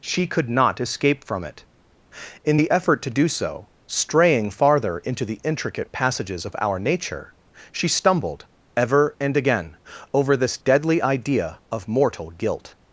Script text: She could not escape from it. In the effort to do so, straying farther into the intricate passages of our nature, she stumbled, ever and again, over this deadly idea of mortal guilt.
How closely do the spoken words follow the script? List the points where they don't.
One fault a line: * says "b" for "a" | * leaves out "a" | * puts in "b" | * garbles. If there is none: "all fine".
all fine